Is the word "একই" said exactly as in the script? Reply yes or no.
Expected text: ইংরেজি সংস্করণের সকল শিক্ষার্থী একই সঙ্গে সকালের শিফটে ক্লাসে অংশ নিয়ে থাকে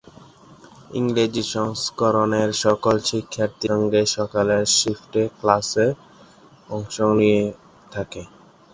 no